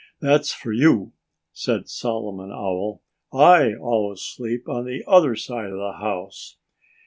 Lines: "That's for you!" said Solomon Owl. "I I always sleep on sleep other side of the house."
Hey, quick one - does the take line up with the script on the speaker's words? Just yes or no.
no